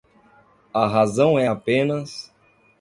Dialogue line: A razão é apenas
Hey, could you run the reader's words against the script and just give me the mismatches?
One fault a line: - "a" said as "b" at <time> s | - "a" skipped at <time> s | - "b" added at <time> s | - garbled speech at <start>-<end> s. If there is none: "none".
none